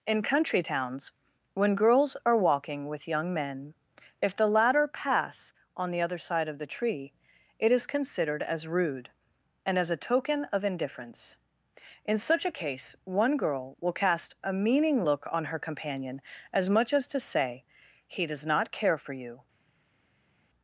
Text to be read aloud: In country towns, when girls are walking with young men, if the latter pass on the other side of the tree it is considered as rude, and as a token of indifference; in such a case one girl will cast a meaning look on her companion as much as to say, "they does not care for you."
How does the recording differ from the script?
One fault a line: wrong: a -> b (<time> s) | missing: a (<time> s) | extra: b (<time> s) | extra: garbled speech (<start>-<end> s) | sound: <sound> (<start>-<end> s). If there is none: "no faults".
wrong: they -> he (18.1 s)